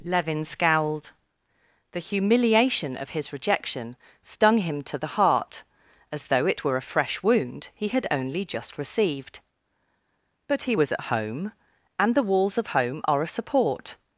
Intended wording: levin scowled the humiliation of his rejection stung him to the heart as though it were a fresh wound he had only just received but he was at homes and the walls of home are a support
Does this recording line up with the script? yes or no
no